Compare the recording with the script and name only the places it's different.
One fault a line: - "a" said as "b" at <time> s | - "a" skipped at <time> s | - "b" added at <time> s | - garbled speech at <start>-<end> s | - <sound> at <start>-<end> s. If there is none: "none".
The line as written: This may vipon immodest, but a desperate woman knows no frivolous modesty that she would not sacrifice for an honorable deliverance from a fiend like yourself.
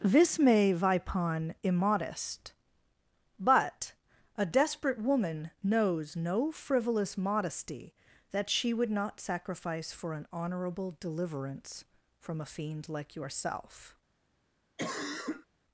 - cough at 14.8-15.5 s